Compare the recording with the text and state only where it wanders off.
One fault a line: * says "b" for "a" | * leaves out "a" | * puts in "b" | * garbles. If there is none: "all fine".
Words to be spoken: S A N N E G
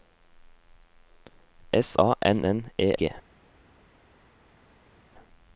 all fine